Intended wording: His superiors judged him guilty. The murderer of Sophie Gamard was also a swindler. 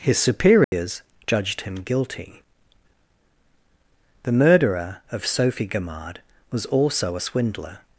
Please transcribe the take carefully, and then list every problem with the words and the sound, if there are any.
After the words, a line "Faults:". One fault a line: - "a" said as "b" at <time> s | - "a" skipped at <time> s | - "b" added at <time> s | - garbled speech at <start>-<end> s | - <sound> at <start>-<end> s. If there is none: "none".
His superiors judged him guilty. The murderer of Sophie Gamard was also a swindler.
Faults:
- dropout at 0.6-0.7 s